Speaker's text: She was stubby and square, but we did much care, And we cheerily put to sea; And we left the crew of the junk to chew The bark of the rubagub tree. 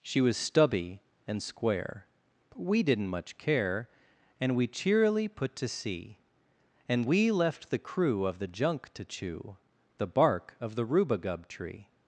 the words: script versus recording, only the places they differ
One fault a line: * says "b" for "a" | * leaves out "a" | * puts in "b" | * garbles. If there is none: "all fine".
* says "didn't" for "did"